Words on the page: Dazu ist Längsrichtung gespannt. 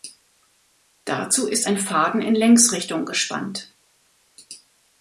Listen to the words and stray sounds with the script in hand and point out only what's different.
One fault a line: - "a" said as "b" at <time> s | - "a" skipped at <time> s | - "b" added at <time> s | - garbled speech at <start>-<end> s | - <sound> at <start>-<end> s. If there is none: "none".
- "ein Faden in" added at 1.7 s